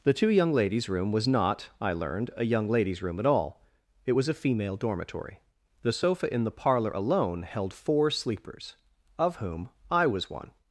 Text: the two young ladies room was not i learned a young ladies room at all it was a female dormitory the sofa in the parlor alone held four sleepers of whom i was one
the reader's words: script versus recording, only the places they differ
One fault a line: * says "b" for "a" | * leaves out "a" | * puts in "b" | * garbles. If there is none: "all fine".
all fine